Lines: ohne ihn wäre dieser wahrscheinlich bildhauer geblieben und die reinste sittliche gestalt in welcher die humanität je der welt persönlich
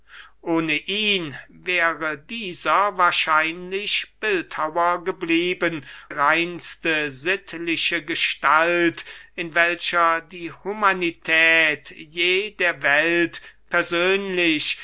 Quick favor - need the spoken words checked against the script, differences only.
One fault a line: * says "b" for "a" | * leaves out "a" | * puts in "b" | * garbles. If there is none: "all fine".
* leaves out "und die"